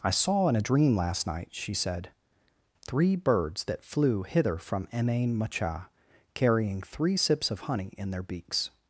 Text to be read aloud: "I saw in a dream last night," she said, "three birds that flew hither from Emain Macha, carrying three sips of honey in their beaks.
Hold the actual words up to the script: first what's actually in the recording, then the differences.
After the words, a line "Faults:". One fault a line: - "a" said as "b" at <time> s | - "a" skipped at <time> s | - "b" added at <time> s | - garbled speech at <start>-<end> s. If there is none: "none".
"I saw in a dream last night," she said, "three birds that flew hither from Emain Macha, carrying three sips of honey in their beaks.
Faults:
none